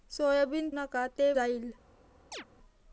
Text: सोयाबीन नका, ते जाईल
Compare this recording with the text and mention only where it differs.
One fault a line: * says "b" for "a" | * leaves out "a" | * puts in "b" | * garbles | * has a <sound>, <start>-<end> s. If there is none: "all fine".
* has a chirp, 2.3-2.5 s